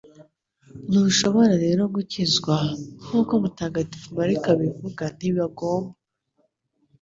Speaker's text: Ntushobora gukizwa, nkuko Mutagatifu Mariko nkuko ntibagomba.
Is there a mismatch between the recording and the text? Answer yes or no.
yes